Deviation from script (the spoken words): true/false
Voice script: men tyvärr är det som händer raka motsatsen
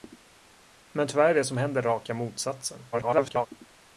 true